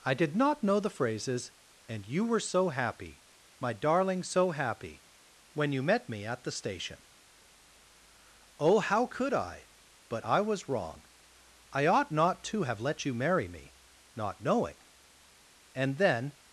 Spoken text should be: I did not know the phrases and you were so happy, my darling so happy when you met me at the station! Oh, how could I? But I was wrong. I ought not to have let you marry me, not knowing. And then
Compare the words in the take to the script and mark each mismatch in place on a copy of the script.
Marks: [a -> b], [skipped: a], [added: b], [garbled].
I did not know the phrases and you were so happy, my darling so happy when you met me at the station! Oh, how could I? But I was wrong. I ought not to have let you marry me, not knowing. And then